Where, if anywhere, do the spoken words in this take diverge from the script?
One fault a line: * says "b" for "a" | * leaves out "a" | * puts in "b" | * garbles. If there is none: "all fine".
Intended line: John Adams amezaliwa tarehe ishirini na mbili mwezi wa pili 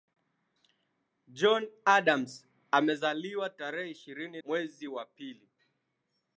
* leaves out "na mbili"